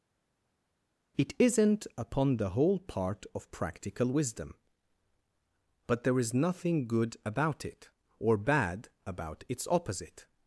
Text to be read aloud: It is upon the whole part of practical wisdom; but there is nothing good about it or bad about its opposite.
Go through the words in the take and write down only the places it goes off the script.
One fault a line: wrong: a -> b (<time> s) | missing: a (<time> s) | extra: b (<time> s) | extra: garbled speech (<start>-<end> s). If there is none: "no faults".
wrong: is -> isn't (1.4 s)